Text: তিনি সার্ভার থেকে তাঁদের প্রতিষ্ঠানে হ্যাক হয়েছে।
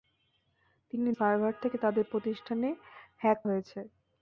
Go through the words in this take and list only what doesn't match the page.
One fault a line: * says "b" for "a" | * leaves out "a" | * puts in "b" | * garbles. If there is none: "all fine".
all fine